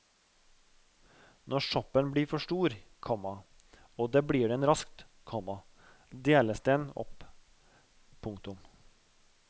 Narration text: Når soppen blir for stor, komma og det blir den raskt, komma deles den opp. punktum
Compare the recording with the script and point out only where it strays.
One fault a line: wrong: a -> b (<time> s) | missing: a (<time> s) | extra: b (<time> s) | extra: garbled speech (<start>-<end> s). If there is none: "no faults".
no faults